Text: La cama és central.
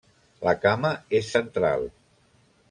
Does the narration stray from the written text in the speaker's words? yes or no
no